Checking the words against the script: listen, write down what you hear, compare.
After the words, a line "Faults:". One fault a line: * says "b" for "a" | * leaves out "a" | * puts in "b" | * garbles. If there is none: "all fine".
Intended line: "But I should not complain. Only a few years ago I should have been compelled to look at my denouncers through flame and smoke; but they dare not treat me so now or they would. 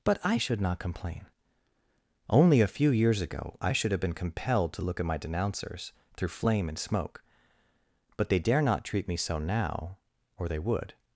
"But I should not complain. Only a few years ago I should have been compelled to look at my denouncers through flame and smoke; but they dare not treat me so now or they would.
Faults:
all fine